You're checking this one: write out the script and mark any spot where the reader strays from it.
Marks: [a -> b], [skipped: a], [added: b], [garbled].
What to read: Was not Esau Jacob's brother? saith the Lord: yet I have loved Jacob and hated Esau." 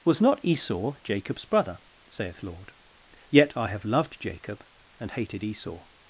Was not Esau Jacob's brother? saith [skipped: the] Lord: yet I have loved Jacob and hated Esau."